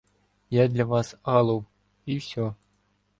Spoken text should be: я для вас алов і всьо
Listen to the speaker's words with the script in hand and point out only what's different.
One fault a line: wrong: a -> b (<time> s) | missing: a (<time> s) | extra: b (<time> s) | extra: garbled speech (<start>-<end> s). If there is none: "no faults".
no faults